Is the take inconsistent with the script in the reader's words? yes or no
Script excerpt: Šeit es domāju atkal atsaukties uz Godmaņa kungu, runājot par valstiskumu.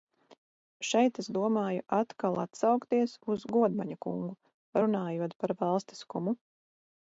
no